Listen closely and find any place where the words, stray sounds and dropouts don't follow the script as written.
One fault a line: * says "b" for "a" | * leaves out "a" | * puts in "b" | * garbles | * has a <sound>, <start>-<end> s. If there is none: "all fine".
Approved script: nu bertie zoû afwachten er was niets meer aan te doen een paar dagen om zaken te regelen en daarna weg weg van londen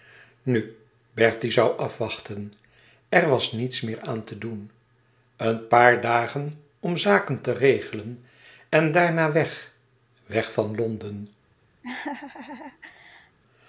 * has a laugh, 11.8-13.4 s